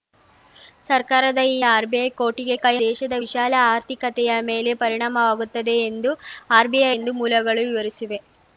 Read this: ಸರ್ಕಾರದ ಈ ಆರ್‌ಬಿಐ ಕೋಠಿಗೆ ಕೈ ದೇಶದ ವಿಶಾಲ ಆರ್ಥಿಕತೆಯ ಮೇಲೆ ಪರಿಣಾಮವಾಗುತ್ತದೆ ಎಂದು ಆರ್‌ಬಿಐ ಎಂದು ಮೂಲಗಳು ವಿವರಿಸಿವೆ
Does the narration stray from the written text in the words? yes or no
no